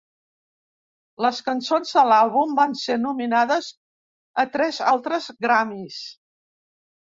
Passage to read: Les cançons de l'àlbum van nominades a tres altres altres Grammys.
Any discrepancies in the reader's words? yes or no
yes